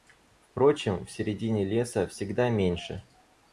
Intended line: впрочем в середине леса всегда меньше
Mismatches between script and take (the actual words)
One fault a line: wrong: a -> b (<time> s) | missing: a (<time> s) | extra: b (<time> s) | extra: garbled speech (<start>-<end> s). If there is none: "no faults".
no faults